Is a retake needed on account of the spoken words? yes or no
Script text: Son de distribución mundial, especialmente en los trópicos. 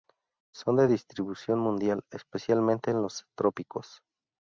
no